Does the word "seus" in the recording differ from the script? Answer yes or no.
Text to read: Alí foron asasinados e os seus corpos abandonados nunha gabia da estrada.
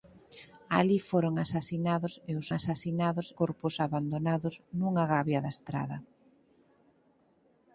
yes